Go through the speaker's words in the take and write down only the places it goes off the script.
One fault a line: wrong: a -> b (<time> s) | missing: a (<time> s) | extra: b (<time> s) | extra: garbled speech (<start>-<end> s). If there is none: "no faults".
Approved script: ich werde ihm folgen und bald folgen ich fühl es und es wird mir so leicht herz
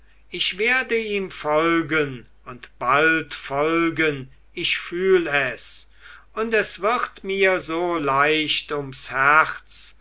extra: ums (8.7 s)